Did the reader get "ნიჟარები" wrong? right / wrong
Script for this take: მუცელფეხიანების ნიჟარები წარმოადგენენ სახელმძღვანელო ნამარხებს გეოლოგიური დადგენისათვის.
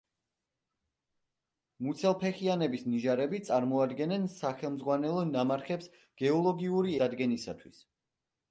right